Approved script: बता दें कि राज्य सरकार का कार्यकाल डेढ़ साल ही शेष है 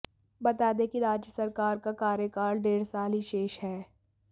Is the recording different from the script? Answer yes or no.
no